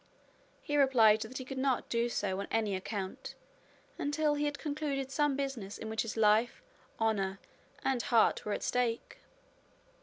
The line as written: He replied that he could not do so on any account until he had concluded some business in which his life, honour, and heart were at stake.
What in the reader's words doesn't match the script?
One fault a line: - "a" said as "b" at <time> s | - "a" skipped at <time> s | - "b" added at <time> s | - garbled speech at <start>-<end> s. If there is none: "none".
none